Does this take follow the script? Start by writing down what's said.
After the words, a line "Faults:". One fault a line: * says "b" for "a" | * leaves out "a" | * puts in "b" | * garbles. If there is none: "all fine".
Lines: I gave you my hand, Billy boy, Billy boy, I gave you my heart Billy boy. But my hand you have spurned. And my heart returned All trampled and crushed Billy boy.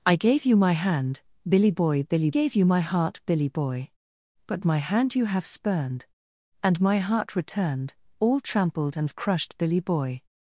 I gave you my hand, Billy boy, Billy gave you my heart Billy boy. But my hand you have spurned. And my heart returned All trampled and crushed Billy boy.
Faults:
* leaves out "boy I"